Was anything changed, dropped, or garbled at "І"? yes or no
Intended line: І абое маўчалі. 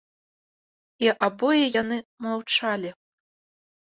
no